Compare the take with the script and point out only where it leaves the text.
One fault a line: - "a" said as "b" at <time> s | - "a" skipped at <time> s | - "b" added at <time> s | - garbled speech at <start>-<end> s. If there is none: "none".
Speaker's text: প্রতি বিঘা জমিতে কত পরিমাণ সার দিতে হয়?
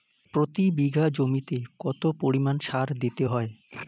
none